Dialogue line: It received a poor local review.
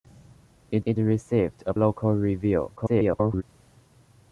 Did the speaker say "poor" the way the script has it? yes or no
no